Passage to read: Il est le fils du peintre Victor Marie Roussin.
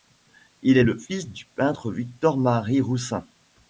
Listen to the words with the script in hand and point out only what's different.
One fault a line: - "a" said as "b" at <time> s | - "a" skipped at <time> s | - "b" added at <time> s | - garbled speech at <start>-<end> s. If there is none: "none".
none